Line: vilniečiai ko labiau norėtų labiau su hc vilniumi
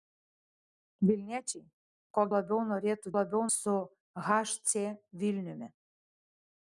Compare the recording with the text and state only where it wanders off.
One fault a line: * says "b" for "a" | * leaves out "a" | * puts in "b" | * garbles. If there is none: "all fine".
all fine